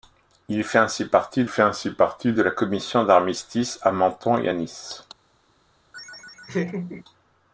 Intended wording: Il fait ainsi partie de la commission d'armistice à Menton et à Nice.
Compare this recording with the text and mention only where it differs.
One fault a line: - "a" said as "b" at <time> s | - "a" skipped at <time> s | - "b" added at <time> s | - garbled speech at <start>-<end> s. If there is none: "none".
- "fait ainsi partie" added at 1.5 s